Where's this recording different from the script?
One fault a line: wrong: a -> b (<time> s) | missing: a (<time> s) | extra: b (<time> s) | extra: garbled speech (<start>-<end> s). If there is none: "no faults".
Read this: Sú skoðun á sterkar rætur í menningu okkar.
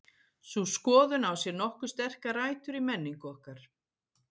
extra: sér nokkuð (1.4 s)